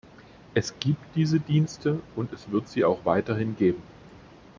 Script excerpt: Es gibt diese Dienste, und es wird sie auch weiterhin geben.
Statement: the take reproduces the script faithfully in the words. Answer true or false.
true